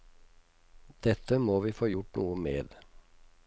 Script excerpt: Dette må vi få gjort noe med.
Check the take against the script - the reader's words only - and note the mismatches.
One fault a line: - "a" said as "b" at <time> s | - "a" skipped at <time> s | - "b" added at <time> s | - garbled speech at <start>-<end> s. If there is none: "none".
none